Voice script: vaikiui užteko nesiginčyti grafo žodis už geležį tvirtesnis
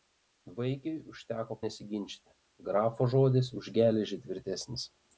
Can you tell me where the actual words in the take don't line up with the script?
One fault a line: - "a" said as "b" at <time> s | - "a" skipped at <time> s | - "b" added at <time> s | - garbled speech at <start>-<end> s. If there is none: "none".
none